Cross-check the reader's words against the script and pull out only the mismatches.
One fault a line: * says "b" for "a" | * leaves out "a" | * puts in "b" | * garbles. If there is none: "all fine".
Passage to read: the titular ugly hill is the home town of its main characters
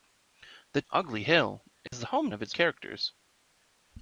* leaves out "titular"
* leaves out "town"
* leaves out "main"